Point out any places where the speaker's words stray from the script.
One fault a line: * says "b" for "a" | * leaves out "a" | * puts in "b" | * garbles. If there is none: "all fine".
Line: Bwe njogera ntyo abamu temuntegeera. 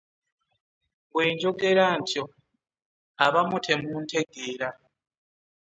all fine